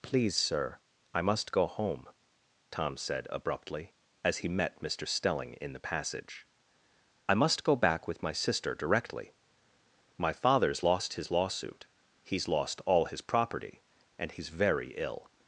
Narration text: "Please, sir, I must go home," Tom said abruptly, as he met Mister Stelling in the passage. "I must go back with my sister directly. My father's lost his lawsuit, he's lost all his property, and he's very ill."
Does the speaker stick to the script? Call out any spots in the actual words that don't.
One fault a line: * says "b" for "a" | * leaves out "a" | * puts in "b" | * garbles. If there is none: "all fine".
all fine